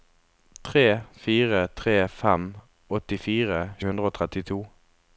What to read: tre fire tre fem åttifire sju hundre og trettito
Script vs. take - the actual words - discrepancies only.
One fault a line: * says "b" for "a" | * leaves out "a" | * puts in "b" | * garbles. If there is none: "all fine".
* leaves out "sju"